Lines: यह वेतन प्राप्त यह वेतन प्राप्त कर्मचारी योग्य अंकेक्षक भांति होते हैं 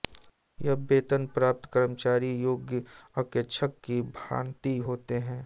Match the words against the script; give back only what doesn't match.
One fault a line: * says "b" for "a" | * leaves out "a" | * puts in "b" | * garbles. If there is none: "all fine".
* leaves out "यह वेतन प्राप्त"
* puts in "की"